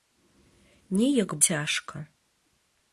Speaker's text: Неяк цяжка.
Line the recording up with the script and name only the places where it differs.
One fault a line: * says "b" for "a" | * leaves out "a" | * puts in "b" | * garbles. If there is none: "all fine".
all fine